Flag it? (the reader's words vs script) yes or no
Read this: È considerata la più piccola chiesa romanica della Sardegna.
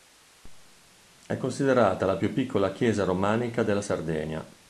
no